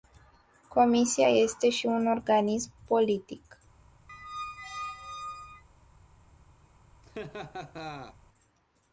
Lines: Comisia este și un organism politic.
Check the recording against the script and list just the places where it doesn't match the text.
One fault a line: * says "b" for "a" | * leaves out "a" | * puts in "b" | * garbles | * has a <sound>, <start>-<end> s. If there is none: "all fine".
* has a squeak, 4.1-5.6 s
* has a laugh, 7.0-8.2 s